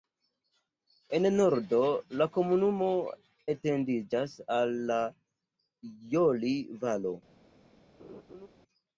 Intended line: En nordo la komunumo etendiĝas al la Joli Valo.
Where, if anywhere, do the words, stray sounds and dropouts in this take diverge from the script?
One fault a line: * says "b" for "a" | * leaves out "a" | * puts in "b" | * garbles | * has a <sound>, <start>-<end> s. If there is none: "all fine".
* has a laugh, 8.0-8.5 s